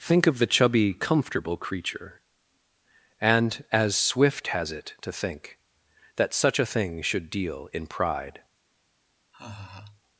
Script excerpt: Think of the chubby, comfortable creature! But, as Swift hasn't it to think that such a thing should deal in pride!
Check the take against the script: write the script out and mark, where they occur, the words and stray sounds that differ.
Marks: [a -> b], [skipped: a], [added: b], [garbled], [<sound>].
Think of the chubby, comfortable creature! [But, -> And] as Swift [hasn't -> has] it to think that such a thing should deal in pride! [laugh]